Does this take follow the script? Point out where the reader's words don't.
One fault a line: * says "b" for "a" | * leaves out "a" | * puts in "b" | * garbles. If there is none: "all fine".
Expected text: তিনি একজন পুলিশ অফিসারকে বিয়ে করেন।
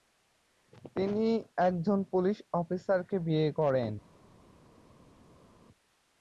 all fine